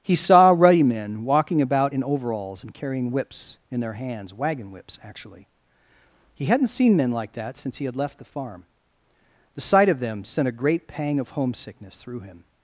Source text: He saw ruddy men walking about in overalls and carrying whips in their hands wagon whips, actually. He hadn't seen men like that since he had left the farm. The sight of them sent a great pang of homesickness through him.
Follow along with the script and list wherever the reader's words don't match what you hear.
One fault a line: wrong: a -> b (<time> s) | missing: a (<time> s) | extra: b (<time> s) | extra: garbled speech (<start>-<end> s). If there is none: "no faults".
no faults